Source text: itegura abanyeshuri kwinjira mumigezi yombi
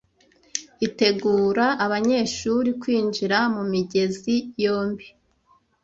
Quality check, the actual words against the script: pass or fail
pass